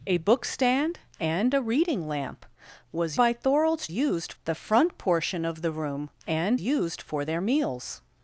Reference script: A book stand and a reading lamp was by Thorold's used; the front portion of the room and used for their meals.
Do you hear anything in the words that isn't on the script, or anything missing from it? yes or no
no